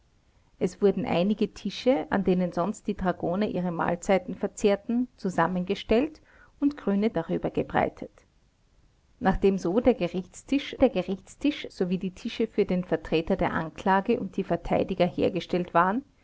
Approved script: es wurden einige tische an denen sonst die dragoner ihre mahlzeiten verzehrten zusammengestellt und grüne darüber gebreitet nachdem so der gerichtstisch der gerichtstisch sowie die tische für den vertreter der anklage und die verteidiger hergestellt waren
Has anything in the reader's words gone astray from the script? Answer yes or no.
no